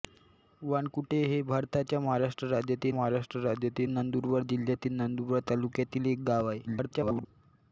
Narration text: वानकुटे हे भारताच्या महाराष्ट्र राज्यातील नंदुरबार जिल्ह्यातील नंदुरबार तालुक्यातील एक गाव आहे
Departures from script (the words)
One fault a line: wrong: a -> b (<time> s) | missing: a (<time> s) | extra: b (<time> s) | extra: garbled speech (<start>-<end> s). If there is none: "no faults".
extra: महाराष्ट्र राज्यातील (2.9 s)
extra: garbled speech (6.7-7.3 s)